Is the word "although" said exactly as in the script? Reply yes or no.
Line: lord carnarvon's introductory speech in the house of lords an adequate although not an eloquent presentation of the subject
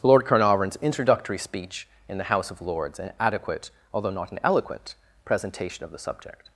yes